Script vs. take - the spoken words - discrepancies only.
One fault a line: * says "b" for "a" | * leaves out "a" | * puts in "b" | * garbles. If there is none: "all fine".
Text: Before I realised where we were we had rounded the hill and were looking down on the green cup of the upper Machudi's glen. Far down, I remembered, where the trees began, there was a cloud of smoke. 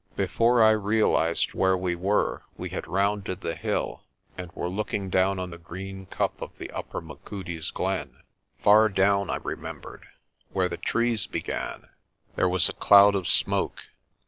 all fine